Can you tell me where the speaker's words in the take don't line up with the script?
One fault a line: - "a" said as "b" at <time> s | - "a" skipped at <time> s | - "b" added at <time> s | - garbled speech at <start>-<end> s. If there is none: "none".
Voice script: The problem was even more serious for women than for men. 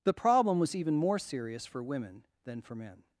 none